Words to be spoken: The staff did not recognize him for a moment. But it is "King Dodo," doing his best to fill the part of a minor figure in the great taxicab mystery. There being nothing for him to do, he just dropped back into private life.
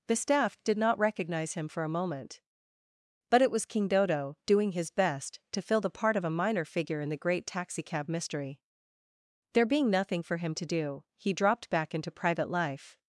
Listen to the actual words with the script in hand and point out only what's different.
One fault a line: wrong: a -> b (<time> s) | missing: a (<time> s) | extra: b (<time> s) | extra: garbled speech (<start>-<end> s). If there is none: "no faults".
wrong: is -> was (3.5 s)
missing: just (11.3 s)